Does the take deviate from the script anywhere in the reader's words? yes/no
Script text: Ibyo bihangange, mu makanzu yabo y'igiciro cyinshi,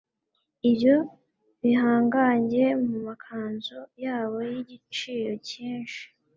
no